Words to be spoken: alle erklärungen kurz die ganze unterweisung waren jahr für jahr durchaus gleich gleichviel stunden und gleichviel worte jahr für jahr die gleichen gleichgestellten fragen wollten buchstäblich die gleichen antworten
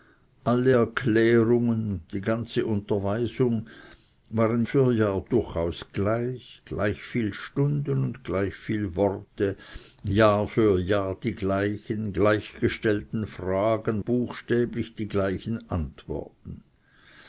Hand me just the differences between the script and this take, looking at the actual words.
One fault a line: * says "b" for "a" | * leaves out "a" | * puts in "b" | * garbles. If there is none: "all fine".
* leaves out "kurz"
* leaves out "jahr"
* leaves out "wollten"